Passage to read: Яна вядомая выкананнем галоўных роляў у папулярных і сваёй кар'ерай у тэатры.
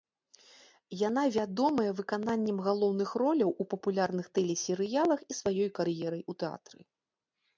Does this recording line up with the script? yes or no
no